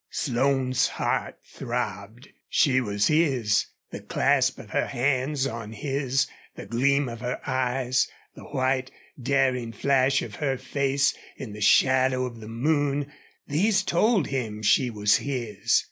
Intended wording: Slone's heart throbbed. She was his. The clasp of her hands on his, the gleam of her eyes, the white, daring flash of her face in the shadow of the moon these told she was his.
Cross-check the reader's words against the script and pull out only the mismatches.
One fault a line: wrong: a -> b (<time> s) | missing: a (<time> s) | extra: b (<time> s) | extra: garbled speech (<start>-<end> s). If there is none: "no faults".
extra: him (14.3 s)